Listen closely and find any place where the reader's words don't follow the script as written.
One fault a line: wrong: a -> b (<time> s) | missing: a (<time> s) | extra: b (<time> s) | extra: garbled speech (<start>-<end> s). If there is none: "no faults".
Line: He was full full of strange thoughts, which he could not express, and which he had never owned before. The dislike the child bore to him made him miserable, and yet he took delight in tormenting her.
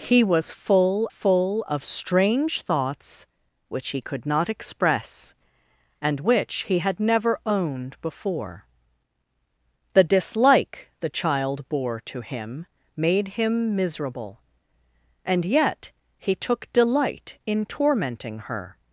no faults